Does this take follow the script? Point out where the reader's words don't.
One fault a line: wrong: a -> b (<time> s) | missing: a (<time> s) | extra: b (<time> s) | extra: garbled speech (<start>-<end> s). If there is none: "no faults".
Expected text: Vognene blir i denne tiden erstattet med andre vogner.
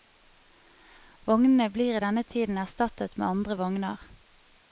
no faults